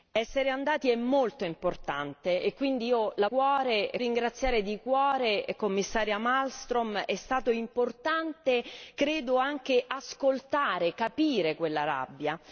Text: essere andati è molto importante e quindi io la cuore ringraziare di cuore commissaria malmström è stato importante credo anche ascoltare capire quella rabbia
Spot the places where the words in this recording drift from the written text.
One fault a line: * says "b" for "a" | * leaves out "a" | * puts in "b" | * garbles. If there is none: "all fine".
all fine